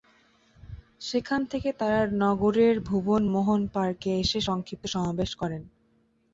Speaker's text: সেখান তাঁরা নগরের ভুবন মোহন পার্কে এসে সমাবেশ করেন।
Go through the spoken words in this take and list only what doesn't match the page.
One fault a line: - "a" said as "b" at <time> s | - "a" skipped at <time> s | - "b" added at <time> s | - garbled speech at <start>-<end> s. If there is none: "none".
- "থেকে" added at 1.4 s
- "সংক্ষিপ্ত" added at 4.5 s